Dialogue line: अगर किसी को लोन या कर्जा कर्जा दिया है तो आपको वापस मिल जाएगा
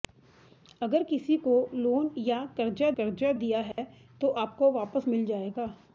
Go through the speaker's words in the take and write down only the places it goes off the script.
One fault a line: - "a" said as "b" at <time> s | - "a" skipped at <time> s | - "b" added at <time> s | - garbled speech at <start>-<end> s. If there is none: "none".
none